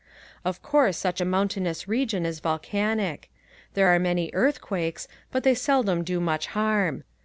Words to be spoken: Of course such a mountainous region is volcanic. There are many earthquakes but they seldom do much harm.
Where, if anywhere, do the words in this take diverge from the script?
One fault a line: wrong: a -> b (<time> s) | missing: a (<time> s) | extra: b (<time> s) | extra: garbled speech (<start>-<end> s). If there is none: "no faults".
no faults